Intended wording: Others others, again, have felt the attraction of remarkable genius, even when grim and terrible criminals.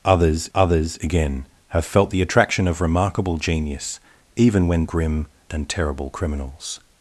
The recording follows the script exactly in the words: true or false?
true